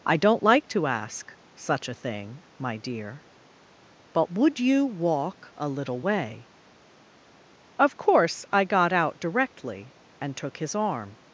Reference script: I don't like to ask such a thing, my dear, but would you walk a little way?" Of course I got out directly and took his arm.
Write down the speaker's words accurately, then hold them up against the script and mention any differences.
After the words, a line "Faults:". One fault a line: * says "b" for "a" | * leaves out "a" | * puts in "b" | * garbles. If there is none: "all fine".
I don't like to ask such a thing, my dear, but would you walk a little way?" Of course I got out directly and took his arm.
Faults:
all fine